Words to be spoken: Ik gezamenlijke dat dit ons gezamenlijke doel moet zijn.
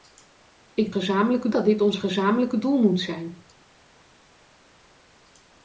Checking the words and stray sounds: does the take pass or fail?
pass